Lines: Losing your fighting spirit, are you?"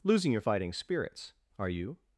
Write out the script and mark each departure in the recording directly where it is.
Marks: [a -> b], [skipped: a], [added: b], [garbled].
Losing your fighting [spirit, -> spirits] are you?"